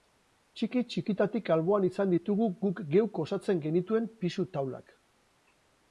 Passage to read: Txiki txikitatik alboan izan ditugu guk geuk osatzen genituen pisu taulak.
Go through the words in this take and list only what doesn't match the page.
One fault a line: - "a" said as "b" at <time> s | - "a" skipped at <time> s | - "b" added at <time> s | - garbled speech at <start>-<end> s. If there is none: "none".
none